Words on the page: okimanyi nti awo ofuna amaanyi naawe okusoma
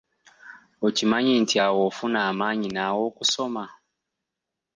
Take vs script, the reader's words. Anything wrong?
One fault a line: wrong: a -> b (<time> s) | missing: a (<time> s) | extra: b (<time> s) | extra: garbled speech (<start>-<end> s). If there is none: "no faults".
no faults